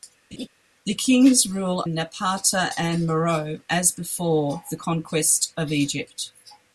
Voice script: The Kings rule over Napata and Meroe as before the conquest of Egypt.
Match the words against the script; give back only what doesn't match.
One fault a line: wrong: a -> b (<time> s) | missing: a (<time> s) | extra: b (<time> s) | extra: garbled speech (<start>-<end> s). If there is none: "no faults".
missing: over (1.8 s)